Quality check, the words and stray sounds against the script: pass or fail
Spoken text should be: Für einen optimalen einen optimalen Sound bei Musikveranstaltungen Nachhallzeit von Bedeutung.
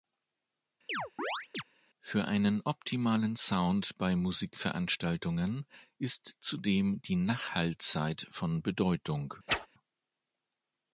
fail